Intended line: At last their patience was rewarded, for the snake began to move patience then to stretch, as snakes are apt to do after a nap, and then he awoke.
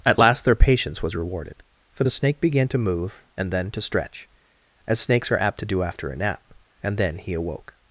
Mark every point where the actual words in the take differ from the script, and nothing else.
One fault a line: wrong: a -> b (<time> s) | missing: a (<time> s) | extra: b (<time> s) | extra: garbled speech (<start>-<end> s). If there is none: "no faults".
wrong: patience -> and (3.4 s)